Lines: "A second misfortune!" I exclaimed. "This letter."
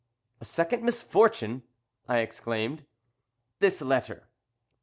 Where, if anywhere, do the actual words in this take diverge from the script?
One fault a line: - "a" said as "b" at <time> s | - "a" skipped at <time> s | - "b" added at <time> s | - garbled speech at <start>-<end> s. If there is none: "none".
none